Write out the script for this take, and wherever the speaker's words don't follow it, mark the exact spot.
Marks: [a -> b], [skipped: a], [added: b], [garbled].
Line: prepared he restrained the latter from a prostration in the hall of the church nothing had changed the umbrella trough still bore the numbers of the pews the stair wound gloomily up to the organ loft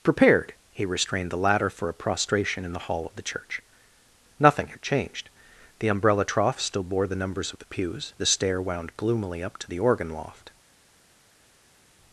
prepared he restrained the latter [from -> for] a prostration in the hall of the church nothing had changed the umbrella trough still bore the numbers of the pews the stair wound gloomily up to the organ loft